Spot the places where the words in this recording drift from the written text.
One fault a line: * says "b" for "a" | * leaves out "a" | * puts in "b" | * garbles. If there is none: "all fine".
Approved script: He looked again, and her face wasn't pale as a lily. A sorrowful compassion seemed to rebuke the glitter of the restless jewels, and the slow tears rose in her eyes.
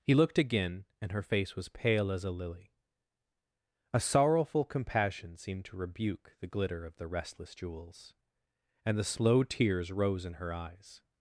* says "was" for "wasn't"